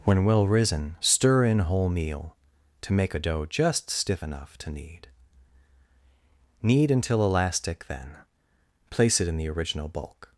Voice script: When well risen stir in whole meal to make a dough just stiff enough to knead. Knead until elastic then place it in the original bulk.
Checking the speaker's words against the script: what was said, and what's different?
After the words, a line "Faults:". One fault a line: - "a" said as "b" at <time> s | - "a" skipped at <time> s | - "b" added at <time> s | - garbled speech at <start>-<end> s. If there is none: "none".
When well risen stir in whole meal to make a dough just stiff enough to knead. Knead until elastic then place it in the original bulk.
Faults:
none